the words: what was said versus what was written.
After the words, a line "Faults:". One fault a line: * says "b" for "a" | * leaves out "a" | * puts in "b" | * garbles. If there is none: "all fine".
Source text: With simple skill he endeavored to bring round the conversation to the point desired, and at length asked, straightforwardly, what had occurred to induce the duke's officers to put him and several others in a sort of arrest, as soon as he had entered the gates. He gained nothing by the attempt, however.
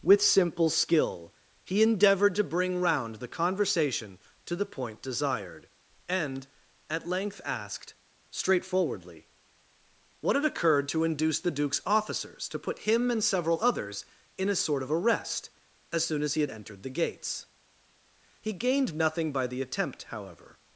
With simple skill he endeavored to bring round the conversation to the point desired, and at length asked, straightforwardly, what had occurred to induce the duke's officers to put him and several others in a sort of arrest, as soon as he had entered the gates. He gained nothing by the attempt, however.
Faults:
all fine